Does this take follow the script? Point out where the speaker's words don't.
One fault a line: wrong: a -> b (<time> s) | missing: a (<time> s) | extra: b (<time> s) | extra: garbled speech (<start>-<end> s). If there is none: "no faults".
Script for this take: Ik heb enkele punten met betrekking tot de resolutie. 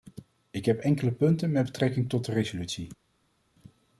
no faults